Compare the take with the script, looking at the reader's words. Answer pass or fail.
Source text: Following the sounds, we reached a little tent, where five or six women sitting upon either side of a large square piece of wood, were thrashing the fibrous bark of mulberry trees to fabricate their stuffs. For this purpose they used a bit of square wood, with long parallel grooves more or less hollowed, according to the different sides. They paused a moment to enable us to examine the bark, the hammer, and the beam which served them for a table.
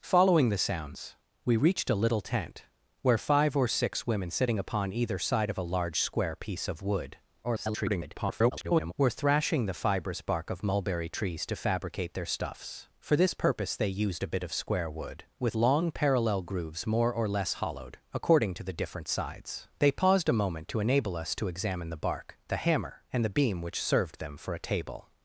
fail